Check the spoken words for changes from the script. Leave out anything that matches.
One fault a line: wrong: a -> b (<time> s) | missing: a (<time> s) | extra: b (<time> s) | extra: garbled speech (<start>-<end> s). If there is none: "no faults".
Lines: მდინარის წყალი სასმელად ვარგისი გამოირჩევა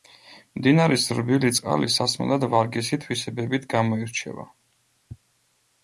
extra: რბილი (1.2 s)
extra: თვისებებით (3.1 s)